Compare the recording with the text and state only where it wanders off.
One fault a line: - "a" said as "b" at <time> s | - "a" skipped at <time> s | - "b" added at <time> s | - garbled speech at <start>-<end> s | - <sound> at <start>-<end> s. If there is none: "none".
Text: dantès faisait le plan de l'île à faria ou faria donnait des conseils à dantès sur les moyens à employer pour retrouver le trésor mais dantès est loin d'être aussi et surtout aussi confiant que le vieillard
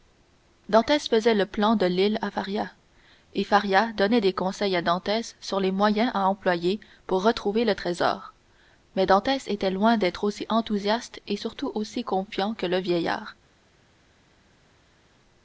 - "ou" said as "et" at 3.3 s
- "est" said as "était" at 9.5 s
- "enthousiaste" added at 10.5 s